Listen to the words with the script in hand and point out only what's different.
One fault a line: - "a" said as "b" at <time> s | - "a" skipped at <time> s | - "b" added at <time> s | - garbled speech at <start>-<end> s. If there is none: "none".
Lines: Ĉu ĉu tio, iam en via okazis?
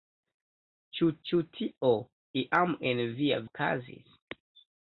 none